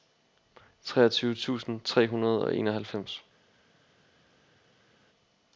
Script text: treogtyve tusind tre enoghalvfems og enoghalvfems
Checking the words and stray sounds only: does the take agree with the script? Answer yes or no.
no